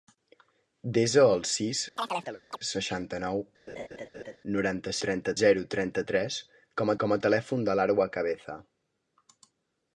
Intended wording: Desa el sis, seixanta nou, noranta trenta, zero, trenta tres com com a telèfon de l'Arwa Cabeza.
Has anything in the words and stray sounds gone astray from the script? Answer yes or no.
yes